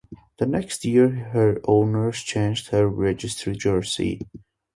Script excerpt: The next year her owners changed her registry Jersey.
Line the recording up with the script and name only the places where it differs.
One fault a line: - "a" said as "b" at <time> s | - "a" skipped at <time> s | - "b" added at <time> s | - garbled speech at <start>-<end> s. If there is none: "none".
none